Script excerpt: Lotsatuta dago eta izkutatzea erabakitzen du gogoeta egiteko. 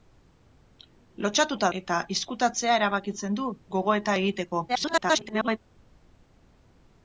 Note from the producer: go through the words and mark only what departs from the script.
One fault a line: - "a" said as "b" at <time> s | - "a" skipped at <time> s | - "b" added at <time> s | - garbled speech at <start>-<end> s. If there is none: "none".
- "dago" skipped at 1.7 s
- garbled speech at 4.7-5.6 s